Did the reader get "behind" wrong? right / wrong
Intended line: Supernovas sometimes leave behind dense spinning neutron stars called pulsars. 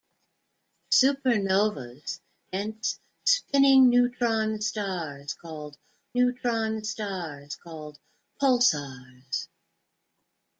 wrong